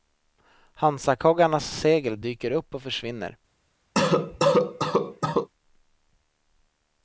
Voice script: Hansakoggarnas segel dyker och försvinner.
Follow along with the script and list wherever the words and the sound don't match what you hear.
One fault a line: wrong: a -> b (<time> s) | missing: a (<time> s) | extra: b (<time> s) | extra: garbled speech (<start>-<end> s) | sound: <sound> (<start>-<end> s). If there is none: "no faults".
extra: upp (2.5 s)
sound: cough (3.9-5.5 s)